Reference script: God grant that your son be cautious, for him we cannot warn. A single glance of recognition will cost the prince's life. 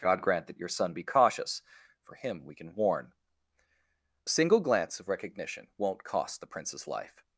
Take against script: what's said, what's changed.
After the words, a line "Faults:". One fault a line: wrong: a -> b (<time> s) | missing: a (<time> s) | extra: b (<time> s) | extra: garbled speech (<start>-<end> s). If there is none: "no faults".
God grant that your son be cautious, for him we can warn. A single glance of recognition won't cost the prince's life.
Faults:
wrong: cannot -> can (2.5 s)
wrong: will -> won't (5.8 s)